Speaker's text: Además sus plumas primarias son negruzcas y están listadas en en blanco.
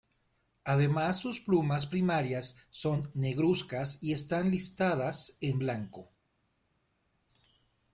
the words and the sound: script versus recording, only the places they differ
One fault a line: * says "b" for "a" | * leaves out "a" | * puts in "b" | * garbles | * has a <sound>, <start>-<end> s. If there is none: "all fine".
* leaves out "en"